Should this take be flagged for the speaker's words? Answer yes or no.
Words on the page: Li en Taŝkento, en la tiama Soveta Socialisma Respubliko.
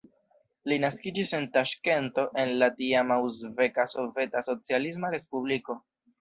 yes